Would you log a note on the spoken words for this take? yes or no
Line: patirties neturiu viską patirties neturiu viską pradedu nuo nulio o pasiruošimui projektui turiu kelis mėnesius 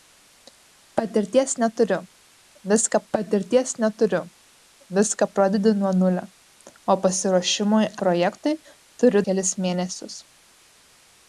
no